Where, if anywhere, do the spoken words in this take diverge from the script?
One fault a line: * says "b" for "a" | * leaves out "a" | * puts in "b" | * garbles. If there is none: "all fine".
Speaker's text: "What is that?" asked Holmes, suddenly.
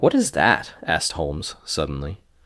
all fine